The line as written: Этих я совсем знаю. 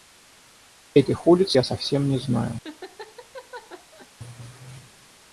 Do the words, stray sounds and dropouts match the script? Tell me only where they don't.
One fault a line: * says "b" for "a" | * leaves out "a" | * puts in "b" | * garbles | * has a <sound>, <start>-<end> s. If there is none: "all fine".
* puts in "улиц"
* puts in "не"
* has a laugh, 2.6-4.1 s